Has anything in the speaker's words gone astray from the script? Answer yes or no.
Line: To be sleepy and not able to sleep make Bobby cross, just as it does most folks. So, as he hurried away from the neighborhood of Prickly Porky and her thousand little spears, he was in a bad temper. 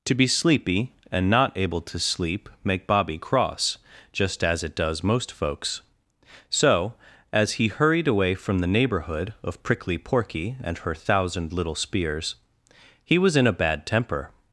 no